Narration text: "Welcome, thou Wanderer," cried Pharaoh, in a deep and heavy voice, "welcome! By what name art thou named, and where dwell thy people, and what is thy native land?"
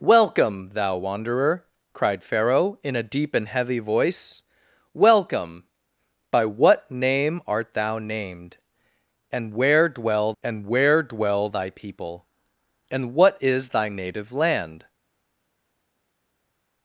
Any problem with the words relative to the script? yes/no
yes